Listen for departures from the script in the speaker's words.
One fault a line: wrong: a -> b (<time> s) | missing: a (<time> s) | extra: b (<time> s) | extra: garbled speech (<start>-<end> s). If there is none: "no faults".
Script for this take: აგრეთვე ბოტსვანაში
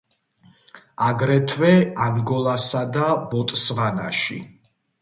extra: ანგოლასა და (2.1 s)